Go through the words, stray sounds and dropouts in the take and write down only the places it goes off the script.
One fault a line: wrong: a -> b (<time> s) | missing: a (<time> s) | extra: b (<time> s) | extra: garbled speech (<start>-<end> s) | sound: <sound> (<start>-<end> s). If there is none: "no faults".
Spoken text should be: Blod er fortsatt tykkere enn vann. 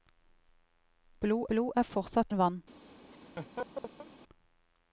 extra: blod (1.5 s)
missing: tykkere (2.3 s)
sound: laugh (3.1-4.1 s)